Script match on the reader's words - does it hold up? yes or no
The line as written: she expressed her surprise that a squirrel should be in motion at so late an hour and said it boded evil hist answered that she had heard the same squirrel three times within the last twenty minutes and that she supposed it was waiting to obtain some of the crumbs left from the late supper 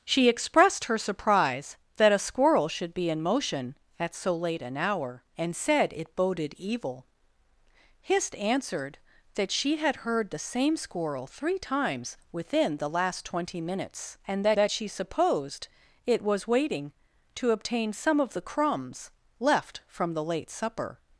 no